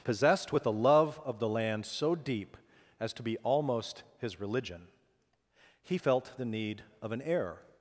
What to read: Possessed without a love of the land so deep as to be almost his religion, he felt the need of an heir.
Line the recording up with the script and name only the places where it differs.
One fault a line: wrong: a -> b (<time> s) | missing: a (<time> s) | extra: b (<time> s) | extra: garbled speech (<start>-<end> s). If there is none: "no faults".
wrong: without -> with (0.5 s)